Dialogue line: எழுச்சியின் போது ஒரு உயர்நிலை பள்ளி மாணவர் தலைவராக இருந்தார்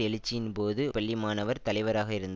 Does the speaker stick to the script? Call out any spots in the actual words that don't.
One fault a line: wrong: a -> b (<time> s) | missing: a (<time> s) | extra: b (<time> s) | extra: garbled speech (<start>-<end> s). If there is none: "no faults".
missing: ஒரு உயர்நிலை (0.8 s)